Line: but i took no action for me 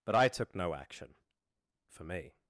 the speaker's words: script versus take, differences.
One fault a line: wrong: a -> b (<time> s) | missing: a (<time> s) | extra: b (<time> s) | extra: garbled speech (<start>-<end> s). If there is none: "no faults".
no faults